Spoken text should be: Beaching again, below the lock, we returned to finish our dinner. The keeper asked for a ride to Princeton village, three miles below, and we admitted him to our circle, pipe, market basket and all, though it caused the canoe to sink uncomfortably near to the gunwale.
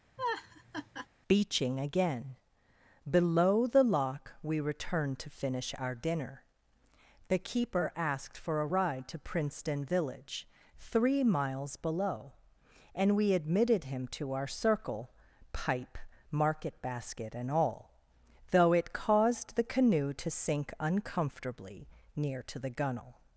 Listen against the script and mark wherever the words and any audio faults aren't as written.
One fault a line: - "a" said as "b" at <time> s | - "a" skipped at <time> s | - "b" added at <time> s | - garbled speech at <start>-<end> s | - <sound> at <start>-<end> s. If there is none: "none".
- laugh at 0.2-1.1 s